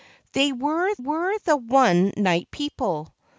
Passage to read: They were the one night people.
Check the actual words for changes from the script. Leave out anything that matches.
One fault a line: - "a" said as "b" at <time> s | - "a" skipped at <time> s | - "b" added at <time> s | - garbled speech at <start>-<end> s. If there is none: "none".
- "were" added at 1.0 s